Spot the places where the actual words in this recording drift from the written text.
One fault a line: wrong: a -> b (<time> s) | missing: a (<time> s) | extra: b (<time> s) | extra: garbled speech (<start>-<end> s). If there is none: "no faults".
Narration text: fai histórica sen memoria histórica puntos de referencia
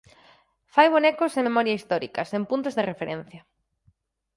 wrong: histórica -> bonecos (0.9 s)
extra: sen (2.3 s)